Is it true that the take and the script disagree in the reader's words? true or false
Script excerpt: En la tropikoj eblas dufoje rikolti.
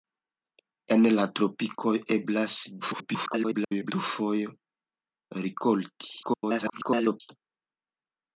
true